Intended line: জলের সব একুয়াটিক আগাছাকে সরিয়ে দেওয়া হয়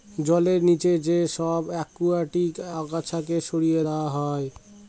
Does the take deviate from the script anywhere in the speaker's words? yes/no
yes